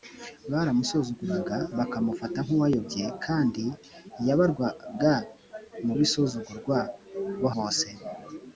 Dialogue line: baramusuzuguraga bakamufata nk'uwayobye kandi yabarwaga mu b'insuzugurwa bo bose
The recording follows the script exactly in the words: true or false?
true